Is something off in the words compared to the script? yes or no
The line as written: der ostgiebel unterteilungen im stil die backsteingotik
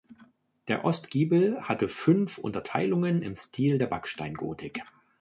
yes